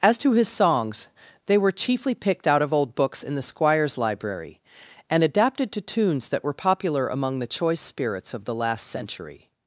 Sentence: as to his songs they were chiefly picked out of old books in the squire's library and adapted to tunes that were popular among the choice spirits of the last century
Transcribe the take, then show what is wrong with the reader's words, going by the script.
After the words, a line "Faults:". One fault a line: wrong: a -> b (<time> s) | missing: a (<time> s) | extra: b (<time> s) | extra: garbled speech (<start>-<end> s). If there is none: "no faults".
as to his songs they were chiefly picked out of old books in the squire's library and adapted to tunes that were popular among the choice spirits of the last century
Faults:
no faults